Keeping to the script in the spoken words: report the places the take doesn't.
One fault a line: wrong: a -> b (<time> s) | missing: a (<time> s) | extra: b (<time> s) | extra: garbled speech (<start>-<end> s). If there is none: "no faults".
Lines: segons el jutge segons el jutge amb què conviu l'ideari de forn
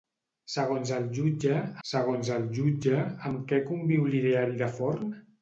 no faults